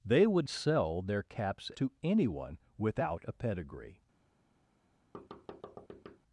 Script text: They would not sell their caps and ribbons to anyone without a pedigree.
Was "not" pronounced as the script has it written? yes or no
no